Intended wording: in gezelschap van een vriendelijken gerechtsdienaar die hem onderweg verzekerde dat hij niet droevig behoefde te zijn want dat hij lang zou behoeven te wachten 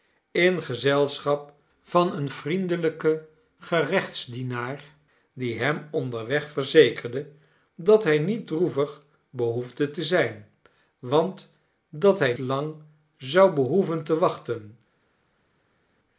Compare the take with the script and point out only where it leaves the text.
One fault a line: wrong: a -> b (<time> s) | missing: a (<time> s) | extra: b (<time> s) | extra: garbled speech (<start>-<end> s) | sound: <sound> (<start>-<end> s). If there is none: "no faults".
no faults